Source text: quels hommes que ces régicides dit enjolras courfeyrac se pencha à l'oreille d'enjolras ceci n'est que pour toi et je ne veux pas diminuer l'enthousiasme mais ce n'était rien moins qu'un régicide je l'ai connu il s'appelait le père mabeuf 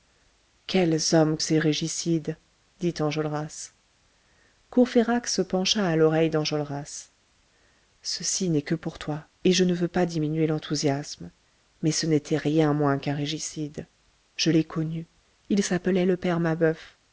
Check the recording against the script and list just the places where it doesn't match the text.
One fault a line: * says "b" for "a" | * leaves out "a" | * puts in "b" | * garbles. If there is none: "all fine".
* leaves out "que"